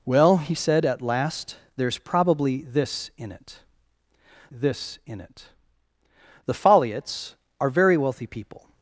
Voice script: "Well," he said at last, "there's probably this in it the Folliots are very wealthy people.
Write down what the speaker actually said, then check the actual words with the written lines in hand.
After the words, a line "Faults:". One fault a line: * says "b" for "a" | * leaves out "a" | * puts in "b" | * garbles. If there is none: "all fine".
"Well," he said at last, "there's probably this in it this in it the Folliots are very wealthy people.
Faults:
* puts in "this in it"